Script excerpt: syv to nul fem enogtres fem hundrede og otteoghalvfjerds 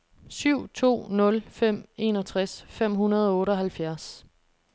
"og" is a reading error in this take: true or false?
false